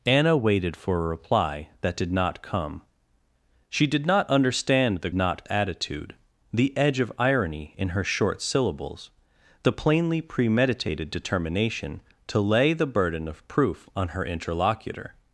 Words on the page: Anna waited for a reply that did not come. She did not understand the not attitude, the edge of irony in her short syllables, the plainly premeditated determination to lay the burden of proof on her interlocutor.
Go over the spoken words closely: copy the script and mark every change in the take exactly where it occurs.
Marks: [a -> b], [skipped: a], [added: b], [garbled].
Anna waited for a reply that did not come. She did not understand the not attitude, the edge of irony in her short syllables, the plainly premeditated determination to lay the burden of proof on her interlocutor.